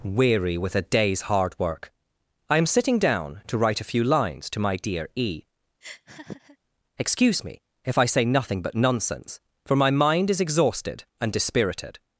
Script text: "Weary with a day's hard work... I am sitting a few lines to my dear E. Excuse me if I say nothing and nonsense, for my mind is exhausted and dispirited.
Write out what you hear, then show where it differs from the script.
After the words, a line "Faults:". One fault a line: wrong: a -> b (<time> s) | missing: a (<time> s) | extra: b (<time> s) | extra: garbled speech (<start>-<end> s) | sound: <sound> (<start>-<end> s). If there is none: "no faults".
"Weary with a day's hard work... I am sitting down to write a few lines to my dear E. Excuse me if I say nothing but nonsense, for my mind is exhausted and dispirited.
Faults:
extra: down to write (3.0 s)
sound: laugh (5.8-6.6 s)
wrong: and -> but (8.6 s)